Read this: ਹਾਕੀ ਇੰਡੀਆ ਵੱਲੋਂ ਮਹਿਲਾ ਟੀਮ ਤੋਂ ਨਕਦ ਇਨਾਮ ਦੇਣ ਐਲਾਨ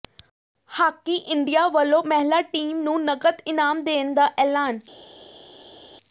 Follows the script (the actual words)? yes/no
no